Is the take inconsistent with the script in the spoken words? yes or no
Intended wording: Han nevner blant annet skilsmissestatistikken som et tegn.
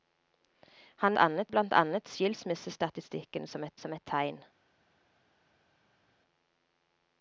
yes